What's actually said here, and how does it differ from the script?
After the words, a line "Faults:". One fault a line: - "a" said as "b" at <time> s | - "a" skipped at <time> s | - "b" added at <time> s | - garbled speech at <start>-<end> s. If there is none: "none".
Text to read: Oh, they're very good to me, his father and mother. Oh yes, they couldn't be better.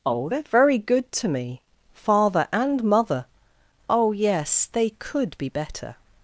Oh, they're very good to me, father and mother. Oh yes, they could be better.
Faults:
- "his" skipped at 1.6 s
- "couldn't" said as "could" at 4.9 s